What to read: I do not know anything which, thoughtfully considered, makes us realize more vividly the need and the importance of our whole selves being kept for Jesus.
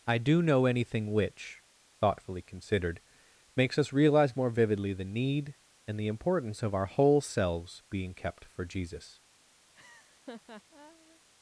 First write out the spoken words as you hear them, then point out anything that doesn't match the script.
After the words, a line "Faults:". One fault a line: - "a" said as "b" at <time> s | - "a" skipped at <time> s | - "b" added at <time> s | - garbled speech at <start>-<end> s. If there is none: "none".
I do know anything which, thoughtfully considered, makes us realize more vividly the need and the importance of our whole selves being kept for Jesus.
Faults:
- "not" skipped at 0.4 s